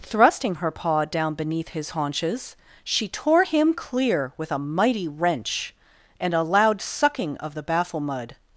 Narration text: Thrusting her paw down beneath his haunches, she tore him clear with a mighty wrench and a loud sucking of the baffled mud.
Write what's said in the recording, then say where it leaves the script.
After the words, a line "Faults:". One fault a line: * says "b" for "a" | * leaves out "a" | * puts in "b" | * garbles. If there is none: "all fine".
Thrusting her paw down beneath his haunches, she tore him clear with a mighty wrench and a loud sucking of the baffle mud.
Faults:
* says "baffle" for "baffled"